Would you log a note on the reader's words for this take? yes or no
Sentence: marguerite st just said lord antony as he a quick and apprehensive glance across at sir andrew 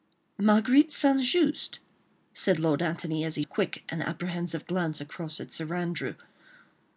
no